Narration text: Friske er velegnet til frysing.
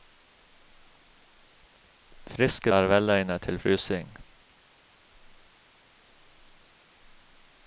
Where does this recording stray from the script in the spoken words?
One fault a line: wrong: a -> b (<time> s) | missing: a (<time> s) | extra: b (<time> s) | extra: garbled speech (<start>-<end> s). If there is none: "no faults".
no faults